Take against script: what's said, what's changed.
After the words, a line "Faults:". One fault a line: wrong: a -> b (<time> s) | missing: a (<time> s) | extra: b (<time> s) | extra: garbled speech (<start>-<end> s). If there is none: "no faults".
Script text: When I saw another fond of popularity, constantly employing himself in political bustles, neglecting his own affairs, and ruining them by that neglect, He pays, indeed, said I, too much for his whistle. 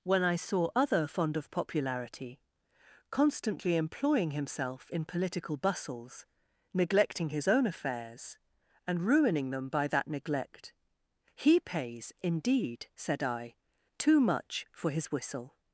When I saw other fond of popularity, constantly employing himself in political bustles, neglecting his own affairs, and ruining them by that neglect, He pays, indeed, said I, too much for his whistle.
Faults:
wrong: another -> other (0.8 s)